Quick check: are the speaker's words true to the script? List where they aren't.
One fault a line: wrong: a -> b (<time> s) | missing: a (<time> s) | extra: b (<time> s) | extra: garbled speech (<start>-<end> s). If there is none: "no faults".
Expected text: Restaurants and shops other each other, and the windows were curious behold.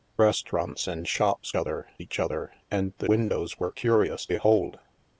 no faults